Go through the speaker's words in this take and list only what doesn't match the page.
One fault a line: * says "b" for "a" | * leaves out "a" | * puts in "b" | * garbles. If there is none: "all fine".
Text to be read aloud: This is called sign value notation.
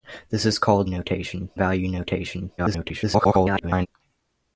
* says "notation" for "sign"
* garbles